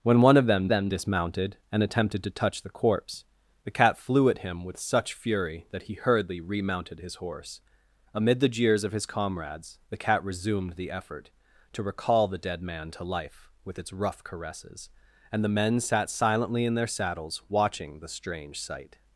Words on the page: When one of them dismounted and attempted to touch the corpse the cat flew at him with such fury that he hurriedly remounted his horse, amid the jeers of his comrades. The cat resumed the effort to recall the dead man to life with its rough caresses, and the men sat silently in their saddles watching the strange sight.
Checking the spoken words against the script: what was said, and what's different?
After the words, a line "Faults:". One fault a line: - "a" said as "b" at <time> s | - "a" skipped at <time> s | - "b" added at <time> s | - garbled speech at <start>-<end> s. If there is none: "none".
When one of them them dismounted and attempted to touch the corpse the cat flew at him with such fury that he hurriedly remounted his horse, amid the jeers of his comrades. The cat resumed the effort to recall the dead man to life with its rough caresses, and the men sat silently in their saddles watching the strange sight.
Faults:
- "them" added at 0.7 s